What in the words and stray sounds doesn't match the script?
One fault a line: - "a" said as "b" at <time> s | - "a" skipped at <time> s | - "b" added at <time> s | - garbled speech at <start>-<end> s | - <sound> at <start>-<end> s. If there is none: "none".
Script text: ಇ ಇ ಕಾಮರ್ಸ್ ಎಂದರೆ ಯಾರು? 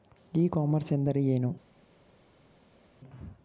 - "ಇ" skipped at 0.5 s
- "ಯಾರು" said as "ಏನು" at 1.3 s